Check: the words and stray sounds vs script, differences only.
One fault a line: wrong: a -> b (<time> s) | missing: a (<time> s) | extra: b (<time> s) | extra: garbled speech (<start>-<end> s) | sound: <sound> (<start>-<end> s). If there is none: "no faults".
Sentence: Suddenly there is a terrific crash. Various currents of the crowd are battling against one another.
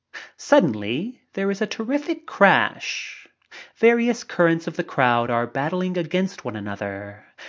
no faults